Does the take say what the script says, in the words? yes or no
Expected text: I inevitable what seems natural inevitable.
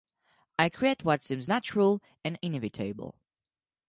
no